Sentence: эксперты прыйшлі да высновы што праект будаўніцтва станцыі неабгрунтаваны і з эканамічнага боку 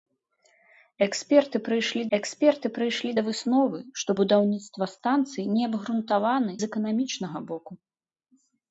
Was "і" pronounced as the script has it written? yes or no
no